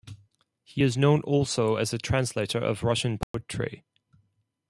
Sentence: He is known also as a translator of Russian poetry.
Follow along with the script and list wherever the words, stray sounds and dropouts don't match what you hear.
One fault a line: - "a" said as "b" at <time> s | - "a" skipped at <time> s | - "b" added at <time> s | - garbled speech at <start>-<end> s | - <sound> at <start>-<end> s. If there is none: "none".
- dropout at 3.2-3.3 s